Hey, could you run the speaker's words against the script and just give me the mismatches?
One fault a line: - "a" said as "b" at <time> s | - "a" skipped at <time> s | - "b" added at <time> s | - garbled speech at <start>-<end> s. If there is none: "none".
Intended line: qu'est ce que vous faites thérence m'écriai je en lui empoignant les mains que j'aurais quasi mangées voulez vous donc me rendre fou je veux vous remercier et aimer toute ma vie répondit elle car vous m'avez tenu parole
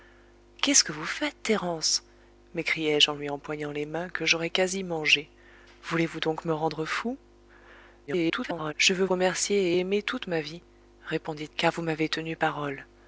- garbled speech at 8.1-8.7 s
- "vous" skipped at 9.0 s
- "elle" skipped at 11.5 s